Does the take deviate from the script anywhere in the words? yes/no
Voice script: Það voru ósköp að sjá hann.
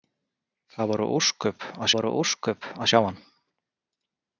yes